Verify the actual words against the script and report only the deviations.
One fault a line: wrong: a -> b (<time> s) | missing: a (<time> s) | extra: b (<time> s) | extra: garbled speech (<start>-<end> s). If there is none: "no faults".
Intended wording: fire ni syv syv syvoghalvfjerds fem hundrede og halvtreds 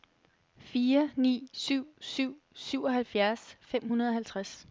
no faults